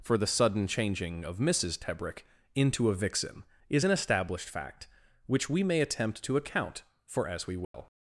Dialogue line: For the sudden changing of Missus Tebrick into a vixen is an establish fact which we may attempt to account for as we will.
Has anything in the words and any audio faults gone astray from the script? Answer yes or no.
yes